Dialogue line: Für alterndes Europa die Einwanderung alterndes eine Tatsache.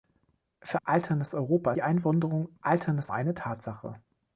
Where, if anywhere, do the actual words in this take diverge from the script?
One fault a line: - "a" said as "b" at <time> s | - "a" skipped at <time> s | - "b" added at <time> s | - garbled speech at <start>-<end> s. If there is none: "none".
none